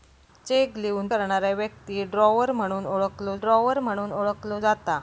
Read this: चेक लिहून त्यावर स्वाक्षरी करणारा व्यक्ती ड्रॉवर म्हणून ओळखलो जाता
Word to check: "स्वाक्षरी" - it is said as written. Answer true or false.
false